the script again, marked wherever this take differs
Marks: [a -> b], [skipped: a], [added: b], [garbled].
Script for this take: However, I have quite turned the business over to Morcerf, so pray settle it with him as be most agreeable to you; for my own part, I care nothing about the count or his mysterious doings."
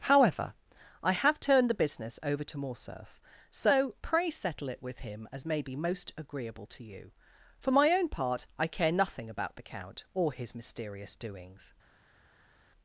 However, I have [skipped: quite] turned the business over to Morcerf, so pray settle it with him as [added: may] be most agreeable to you; for my own part, I care nothing about the count or his mysterious doings."